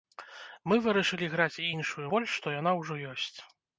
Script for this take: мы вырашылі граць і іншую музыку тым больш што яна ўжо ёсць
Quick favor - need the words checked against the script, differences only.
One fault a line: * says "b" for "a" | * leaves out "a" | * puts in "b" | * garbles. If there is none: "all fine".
* leaves out "музыку тым"